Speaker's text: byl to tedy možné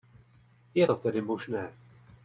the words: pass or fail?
fail